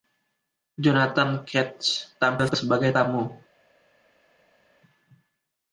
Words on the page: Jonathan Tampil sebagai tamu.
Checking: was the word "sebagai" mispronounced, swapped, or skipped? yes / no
no